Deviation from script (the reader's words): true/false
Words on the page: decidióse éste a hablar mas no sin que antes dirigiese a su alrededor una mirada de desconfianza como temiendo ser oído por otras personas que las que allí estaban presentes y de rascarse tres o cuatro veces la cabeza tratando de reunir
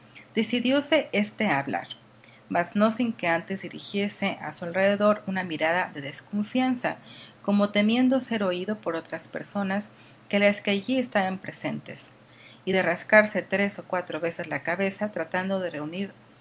false